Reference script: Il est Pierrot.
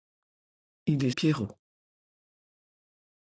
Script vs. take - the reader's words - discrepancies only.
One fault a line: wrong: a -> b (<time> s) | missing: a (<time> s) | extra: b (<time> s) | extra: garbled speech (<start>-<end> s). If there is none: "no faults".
no faults